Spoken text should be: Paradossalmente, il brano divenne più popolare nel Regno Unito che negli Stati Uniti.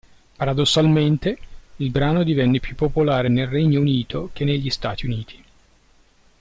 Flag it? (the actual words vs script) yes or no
no